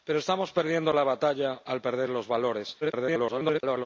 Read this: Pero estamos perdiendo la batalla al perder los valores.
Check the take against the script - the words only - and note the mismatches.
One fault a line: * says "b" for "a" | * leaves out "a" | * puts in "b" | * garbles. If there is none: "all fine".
* garbles